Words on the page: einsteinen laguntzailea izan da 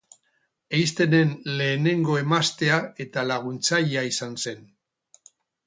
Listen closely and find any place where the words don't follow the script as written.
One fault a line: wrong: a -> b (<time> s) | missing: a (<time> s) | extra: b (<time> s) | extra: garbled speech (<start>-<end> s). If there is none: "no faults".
extra: lehenengo emaztea eta (1.6 s)
wrong: da -> zen (4.5 s)